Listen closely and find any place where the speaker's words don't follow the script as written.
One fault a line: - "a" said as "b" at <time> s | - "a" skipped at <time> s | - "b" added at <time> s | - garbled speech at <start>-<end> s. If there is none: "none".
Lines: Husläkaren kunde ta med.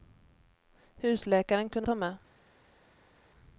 none